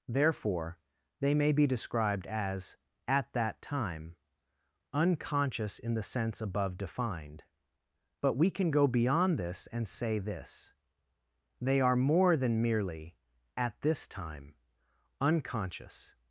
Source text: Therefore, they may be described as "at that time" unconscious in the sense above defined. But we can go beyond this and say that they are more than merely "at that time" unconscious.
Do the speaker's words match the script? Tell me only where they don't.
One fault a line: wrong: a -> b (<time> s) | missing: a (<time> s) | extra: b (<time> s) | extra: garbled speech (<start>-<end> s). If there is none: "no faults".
wrong: that -> this (10.2 s)
wrong: that -> this (13.8 s)